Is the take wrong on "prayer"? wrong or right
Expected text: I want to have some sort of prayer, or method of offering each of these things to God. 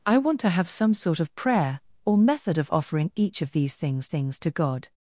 right